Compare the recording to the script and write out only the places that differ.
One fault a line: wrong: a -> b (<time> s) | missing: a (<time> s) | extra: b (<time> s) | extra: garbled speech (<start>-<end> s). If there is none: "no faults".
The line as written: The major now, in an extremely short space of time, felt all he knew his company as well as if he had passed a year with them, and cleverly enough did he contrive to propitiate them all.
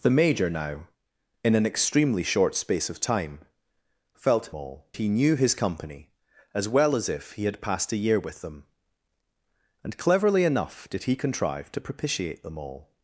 no faults